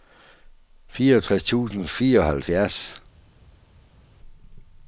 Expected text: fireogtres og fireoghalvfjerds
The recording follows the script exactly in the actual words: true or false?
false